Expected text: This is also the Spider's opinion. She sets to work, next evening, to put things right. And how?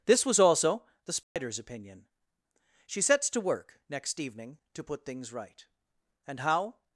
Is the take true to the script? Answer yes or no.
no